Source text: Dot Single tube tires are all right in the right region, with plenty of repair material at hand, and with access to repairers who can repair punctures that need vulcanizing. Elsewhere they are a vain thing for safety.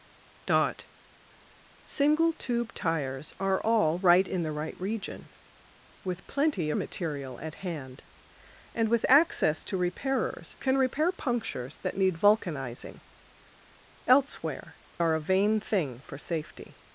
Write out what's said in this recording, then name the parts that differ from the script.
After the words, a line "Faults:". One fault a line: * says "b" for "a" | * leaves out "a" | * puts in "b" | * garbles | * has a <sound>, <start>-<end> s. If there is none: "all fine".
Dot Single tube tires are all right in the right region, with plenty material at hand, and with access to repairers can repair punctures that need vulcanizing. Elsewhere are a vain thing for safety.
Faults:
* leaves out "of repair"
* leaves out "who"
* leaves out "they"